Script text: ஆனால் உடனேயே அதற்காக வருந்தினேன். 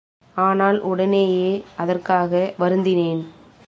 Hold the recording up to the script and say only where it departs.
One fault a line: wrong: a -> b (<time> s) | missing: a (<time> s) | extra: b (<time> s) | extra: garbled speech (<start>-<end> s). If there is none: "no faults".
no faults